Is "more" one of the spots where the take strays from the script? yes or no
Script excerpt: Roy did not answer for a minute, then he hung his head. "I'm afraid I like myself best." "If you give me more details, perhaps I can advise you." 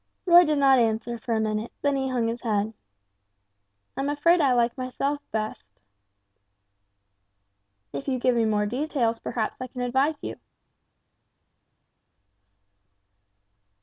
no